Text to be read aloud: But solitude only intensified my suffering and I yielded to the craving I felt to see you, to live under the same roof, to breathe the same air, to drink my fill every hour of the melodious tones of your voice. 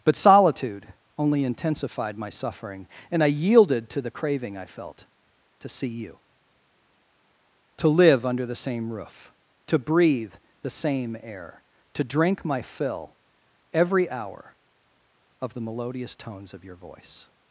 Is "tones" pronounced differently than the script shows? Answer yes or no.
no